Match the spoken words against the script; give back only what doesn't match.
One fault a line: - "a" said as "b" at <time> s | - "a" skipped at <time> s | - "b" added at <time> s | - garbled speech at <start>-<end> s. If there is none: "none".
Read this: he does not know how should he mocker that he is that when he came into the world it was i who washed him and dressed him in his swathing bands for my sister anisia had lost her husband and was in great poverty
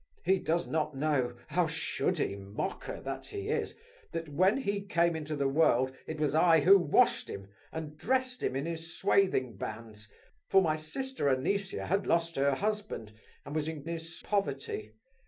- "great" said as "his" at 13.9 s